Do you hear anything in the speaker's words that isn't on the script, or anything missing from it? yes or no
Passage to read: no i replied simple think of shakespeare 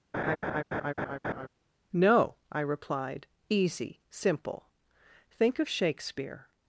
yes